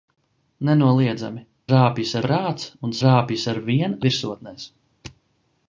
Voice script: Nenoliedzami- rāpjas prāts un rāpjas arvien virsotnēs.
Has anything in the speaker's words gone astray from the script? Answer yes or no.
no